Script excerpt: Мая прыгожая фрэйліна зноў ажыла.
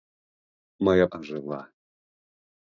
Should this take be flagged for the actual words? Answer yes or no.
yes